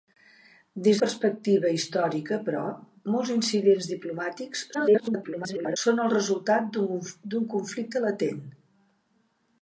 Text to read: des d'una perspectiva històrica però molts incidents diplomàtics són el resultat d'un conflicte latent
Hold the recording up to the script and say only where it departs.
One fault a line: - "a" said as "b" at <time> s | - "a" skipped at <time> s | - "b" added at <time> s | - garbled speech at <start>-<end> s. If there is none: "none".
- "d'una" skipped at 1.0 s
- garbled speech at 4.7-5.8 s